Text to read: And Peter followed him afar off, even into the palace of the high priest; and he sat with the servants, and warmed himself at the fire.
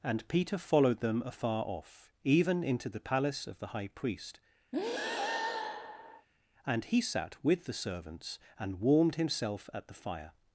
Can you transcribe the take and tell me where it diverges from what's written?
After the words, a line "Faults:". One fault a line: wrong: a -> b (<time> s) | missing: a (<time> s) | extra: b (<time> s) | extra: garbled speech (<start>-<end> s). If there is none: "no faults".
And Peter followed them afar off, even into the palace of the high priest; and he sat with the servants, and warmed himself at the fire.
Faults:
wrong: him -> them (1.0 s)